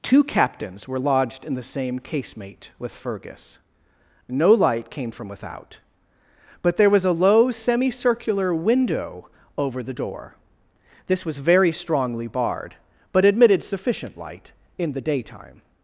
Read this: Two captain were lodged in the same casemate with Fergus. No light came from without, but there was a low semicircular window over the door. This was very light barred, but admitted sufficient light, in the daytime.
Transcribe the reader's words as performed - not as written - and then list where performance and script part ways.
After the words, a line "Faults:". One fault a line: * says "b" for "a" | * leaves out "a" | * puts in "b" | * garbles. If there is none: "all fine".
Two captains were lodged in the same casemate with Fergus. No light came from without, but there was a low semicircular window over the door. This was very strongly barred, but admitted sufficient light, in the daytime.
Faults:
* says "captains" for "captain"
* says "strongly" for "light"